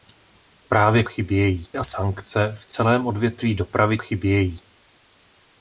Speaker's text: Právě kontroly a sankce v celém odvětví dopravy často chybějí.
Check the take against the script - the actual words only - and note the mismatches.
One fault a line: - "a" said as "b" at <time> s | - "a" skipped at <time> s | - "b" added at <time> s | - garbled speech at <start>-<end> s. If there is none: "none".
- "kontroly" said as "chybějí" at 1.0 s
- "často" skipped at 4.0 s